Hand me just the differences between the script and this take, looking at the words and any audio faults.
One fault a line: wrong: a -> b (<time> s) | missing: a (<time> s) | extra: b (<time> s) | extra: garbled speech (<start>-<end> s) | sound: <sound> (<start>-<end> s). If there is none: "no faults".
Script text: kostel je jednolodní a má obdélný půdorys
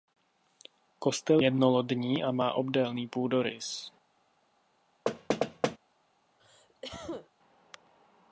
missing: je (1.4 s)
sound: thud (5.1-5.8 s)
sound: cough (6.4-7.3 s)